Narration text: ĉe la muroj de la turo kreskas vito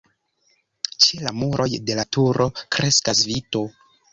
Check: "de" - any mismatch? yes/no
no